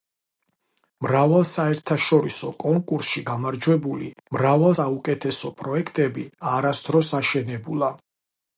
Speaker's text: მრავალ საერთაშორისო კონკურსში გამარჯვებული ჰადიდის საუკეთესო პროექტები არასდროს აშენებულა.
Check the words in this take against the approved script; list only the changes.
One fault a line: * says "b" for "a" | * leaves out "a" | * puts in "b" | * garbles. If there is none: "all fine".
* says "მრავალ" for "ჰადიდის"